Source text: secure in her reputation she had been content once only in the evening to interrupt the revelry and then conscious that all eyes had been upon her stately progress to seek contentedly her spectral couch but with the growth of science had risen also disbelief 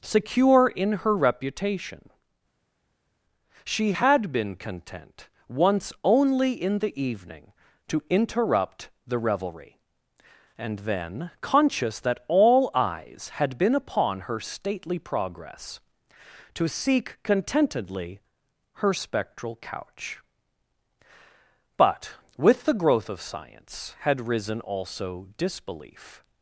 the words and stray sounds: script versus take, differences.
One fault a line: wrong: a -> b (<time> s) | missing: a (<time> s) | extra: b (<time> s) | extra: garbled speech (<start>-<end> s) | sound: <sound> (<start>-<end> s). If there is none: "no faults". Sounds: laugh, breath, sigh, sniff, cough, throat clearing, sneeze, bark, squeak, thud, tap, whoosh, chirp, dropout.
no faults